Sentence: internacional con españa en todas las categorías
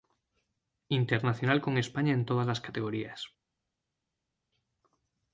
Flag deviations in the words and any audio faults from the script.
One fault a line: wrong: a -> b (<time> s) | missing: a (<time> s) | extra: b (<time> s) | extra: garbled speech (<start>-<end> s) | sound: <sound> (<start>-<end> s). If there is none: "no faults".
no faults